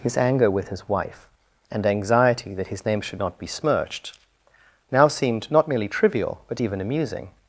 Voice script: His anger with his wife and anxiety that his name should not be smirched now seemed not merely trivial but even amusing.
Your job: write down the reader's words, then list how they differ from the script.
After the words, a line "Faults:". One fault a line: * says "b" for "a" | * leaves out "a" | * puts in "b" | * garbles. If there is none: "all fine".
His anger with his wife and anxiety that his name should not be smirched now seemed not merely trivial but even amusing.
Faults:
all fine